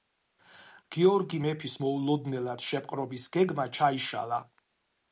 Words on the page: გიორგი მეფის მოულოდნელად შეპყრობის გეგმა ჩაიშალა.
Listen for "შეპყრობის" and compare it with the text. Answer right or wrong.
right